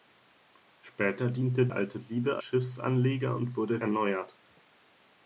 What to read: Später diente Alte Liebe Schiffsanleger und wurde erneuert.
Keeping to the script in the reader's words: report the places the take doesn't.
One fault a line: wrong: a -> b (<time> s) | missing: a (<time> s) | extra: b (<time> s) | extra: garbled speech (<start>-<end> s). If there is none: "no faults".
no faults